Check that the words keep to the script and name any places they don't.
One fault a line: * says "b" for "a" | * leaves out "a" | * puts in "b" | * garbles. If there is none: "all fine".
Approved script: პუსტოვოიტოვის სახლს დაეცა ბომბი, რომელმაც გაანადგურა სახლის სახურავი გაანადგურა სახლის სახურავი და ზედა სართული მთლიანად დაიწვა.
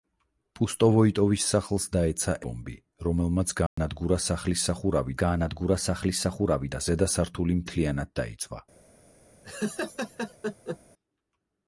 all fine